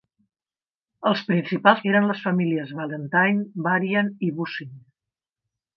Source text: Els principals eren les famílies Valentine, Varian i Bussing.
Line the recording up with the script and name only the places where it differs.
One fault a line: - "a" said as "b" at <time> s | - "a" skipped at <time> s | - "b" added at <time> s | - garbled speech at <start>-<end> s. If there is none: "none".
none